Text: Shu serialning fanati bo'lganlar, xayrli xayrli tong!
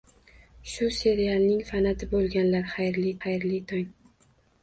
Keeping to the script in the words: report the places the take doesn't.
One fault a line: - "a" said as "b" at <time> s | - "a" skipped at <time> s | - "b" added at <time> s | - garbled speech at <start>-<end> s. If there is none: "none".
none